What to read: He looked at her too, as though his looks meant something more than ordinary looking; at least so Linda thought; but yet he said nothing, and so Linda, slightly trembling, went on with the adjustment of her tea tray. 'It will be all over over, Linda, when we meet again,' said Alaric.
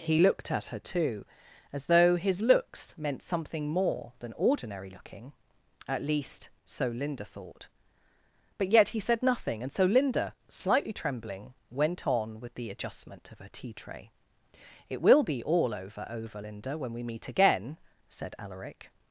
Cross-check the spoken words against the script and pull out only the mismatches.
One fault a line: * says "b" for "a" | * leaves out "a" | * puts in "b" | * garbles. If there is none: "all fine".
all fine